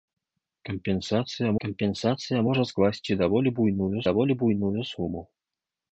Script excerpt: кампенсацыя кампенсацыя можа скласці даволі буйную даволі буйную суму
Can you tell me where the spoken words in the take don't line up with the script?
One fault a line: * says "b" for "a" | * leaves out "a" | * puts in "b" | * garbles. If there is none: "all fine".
all fine